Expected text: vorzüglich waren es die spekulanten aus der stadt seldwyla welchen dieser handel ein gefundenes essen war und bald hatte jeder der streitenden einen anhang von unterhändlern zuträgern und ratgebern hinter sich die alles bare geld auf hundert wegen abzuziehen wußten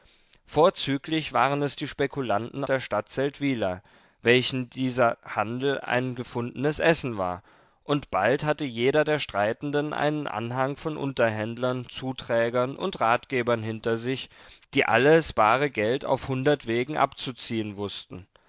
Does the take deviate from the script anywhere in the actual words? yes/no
yes